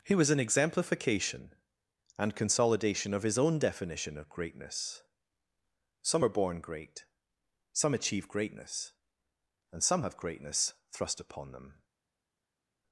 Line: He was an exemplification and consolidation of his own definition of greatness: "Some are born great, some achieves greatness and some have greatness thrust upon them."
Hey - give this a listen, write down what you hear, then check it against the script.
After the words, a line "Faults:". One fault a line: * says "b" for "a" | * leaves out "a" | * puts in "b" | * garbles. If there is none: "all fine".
He was an exemplification and consolidation of his own definition of greatness: "Some are born great, some achieve greatness and some have greatness thrust upon them."
Faults:
* says "achieve" for "achieves"